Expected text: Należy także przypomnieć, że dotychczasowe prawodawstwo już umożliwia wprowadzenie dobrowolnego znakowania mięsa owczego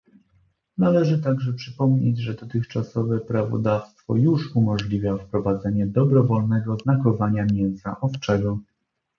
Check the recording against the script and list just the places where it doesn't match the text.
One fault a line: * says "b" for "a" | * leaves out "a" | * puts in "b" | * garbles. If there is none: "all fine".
all fine